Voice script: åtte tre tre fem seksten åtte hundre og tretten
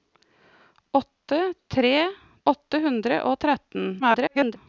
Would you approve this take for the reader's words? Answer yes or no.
no